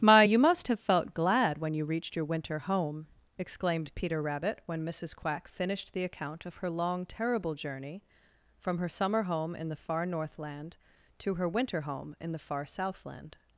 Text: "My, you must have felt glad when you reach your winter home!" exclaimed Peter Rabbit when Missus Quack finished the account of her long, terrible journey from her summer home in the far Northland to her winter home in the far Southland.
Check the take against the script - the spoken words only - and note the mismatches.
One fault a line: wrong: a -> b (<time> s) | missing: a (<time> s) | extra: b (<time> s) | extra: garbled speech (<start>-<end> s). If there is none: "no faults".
wrong: reach -> reached (1.8 s)